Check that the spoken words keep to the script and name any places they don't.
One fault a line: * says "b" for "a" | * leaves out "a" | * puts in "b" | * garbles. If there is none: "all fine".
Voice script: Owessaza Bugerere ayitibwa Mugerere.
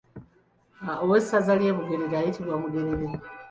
* puts in "ly'e"